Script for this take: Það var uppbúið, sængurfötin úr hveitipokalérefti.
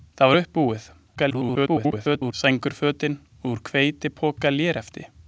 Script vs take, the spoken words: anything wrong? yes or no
yes